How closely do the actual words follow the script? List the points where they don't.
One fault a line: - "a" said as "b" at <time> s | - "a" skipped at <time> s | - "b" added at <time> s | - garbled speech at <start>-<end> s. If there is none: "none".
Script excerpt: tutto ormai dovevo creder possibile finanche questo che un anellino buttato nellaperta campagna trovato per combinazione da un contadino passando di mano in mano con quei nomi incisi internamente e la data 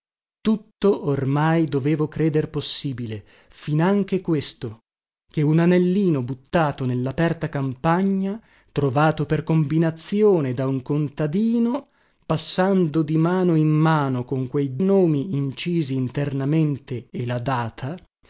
none